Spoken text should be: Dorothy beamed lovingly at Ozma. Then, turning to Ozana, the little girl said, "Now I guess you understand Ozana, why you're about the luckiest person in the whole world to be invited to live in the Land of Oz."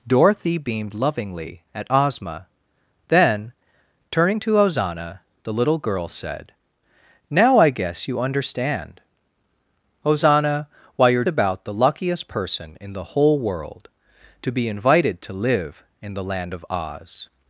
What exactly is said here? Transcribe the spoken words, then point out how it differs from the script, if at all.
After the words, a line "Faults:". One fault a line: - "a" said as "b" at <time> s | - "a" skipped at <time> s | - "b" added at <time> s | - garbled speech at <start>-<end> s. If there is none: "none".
Dorothy beamed lovingly at Ozma. Then, turning to Ozana, the little girl said, "Now I guess you understand Ozana, why you're about the luckiest person in the whole world to be invited to live in the Land of Oz."
Faults:
none